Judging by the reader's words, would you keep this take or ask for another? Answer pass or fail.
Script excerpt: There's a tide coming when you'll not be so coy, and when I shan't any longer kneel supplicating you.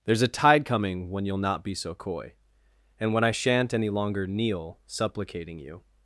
pass